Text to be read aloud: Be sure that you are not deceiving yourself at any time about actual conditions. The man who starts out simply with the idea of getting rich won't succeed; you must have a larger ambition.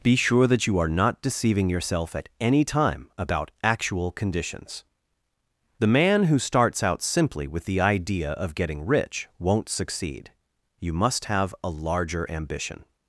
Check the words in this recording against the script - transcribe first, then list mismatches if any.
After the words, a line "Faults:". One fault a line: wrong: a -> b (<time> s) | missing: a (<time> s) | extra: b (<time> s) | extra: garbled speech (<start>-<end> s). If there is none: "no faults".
Be sure that you are not deceiving yourself at any time about actual conditions. The man who starts out simply with the idea of getting rich won't succeed; you must have a larger ambition.
Faults:
no faults